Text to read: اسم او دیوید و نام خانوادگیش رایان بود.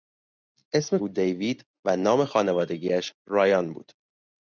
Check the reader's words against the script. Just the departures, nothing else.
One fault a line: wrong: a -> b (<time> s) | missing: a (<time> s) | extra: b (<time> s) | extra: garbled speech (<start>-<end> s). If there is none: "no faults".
no faults